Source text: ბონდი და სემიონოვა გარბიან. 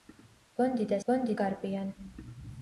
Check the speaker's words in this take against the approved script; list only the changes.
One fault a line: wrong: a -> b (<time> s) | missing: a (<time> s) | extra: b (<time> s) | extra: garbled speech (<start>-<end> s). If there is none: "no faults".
wrong: სემიონოვა -> ბონდი (1.1 s)